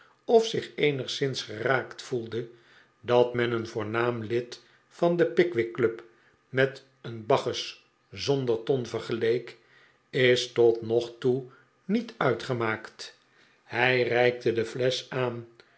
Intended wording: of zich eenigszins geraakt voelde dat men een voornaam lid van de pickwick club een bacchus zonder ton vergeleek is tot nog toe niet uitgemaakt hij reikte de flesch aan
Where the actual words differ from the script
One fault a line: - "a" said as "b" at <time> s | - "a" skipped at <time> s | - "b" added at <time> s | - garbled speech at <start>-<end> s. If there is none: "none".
- "met" added at 6.5 s